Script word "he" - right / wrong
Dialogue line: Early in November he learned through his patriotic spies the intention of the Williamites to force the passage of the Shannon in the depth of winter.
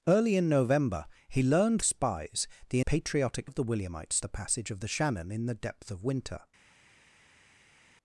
right